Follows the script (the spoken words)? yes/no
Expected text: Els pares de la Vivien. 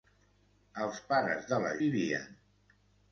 yes